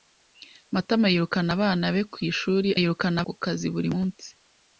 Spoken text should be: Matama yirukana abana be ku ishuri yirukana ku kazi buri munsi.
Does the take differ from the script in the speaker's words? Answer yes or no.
no